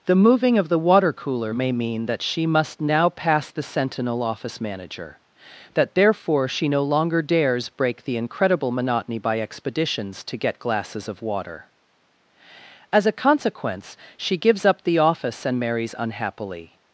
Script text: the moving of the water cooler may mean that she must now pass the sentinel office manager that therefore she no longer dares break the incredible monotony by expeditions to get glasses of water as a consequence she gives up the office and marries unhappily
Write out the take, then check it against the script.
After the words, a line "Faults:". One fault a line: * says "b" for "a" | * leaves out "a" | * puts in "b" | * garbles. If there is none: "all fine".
the moving of the water cooler may mean that she must now pass the sentinel office manager that therefore she no longer dares break the incredible monotony by expeditions to get glasses of water as a consequence she gives up the office and marries unhappily
Faults:
all fine